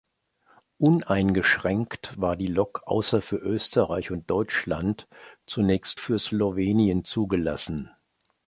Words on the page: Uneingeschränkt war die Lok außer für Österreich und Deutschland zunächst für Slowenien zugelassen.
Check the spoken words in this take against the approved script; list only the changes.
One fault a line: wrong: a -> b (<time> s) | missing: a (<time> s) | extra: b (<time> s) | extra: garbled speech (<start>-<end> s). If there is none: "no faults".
no faults